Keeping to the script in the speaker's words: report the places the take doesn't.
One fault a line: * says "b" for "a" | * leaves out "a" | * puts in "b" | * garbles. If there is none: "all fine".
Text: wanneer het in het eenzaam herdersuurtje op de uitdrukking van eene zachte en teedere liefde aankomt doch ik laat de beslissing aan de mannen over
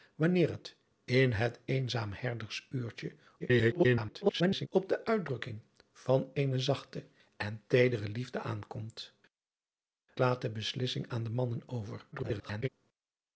* garbles
* leaves out "doch ik"
* garbles